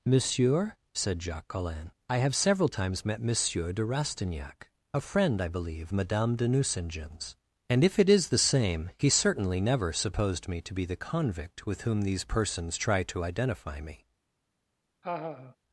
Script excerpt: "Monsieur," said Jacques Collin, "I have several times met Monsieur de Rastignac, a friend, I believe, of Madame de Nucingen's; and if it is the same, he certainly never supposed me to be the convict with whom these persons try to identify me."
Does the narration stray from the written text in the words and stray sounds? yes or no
yes